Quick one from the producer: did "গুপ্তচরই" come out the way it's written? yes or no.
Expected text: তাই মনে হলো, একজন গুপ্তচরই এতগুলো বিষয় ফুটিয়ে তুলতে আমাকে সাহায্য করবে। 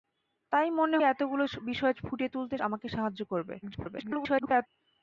no